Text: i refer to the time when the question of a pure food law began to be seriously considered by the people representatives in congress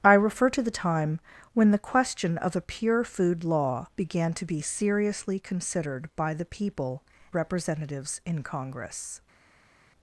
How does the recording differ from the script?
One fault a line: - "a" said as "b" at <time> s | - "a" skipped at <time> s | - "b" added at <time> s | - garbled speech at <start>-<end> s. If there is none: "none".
none